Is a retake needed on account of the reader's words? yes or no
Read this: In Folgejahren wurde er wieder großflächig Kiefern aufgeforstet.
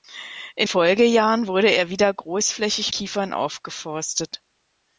no